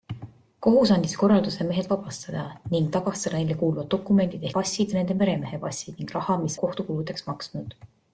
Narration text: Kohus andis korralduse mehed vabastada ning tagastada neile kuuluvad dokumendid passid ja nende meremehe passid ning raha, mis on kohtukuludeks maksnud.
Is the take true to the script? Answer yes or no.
yes